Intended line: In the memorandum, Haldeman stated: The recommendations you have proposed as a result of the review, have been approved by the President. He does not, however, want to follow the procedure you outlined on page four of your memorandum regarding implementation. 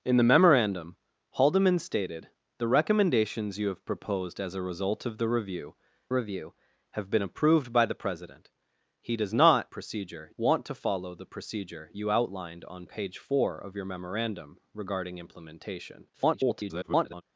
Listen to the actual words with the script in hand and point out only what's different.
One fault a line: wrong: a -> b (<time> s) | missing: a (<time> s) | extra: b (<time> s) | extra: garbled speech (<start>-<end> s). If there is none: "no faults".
extra: review (6.1 s)
wrong: however -> procedure (9.7 s)
extra: garbled speech (16.1-17.2 s)